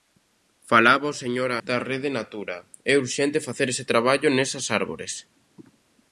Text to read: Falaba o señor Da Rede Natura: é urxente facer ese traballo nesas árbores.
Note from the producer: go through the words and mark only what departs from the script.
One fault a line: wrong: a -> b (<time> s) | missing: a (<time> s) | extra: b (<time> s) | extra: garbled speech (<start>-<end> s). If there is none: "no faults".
no faults